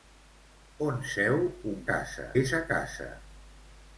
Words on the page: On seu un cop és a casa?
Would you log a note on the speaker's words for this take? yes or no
yes